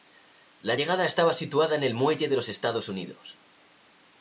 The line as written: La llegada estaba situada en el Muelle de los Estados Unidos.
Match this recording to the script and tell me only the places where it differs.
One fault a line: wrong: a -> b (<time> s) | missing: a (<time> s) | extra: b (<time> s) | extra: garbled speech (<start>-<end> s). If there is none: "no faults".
no faults